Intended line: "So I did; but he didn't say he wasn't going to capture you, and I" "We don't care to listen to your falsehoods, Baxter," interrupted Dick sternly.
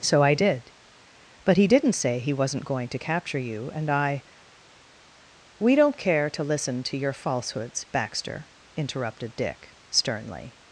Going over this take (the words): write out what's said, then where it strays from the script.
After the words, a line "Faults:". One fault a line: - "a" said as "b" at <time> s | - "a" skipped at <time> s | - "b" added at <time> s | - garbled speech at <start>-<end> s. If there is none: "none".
"So I did; but he didn't say he wasn't going to capture you, and I" "We don't care to listen to your falsehoods, Baxter," interrupted Dick sternly.
Faults:
none